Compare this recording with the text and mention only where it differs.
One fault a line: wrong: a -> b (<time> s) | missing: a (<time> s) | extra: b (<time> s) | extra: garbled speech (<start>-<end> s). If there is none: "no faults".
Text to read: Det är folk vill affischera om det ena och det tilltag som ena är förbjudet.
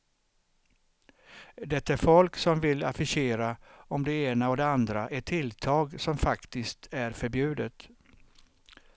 extra: som (2.4 s)
extra: andra ett (4.7 s)
wrong: ena -> faktiskt (6.2 s)